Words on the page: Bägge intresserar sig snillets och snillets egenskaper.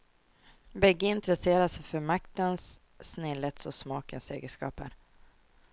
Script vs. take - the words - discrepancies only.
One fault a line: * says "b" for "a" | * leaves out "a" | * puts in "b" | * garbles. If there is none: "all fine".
* puts in "för maktens"
* says "smakens" for "snillets"